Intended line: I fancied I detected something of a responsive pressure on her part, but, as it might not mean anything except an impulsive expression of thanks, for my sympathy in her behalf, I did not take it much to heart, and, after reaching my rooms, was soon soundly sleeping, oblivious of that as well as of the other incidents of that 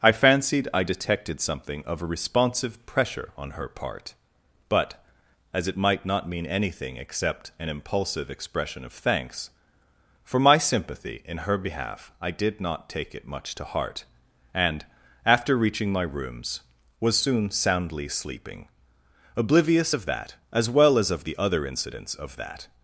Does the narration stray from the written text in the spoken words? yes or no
no